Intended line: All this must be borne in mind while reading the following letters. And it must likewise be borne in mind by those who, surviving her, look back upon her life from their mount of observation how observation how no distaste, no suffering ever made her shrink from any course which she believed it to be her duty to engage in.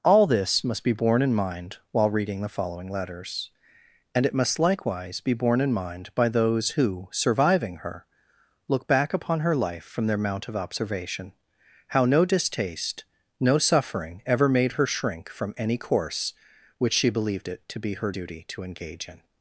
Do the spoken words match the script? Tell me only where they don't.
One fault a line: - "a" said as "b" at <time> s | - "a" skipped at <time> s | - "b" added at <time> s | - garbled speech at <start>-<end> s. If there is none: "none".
- "observation how" skipped at 12.1 s